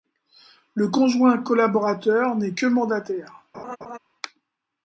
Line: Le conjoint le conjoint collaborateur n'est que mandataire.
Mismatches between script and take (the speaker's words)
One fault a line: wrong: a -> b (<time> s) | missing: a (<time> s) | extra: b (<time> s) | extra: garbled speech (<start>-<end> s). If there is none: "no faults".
missing: le conjoint (1.4 s)